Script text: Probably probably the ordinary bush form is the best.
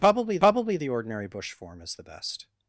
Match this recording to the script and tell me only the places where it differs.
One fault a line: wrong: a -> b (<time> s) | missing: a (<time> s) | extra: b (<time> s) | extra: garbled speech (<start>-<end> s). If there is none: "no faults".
no faults